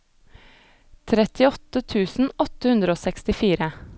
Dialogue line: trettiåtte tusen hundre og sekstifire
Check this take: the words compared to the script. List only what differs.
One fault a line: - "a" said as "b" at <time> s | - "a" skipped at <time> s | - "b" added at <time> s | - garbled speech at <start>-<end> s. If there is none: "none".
- "åtte" added at 2.5 s